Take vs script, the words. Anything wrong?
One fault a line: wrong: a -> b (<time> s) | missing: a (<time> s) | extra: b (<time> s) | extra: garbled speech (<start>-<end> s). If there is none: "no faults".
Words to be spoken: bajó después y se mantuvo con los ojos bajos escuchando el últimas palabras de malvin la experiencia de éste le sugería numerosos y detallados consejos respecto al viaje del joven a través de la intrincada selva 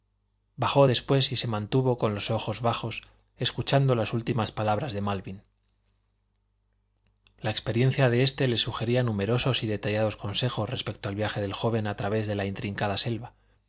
wrong: el -> las (4.0 s)